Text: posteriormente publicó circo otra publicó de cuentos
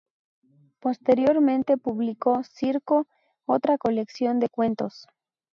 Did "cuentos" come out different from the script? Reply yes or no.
no